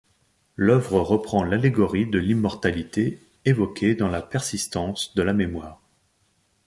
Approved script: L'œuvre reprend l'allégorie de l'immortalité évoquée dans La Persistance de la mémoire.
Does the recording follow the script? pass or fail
pass